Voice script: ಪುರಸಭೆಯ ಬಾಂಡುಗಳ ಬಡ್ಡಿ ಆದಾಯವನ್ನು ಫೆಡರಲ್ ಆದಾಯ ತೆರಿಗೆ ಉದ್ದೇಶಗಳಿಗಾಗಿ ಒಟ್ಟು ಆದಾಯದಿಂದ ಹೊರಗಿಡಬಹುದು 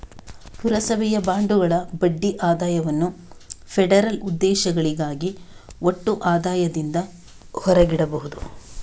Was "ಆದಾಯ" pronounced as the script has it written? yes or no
no